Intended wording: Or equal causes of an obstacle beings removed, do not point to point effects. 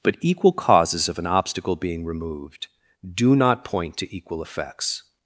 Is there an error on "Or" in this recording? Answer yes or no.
yes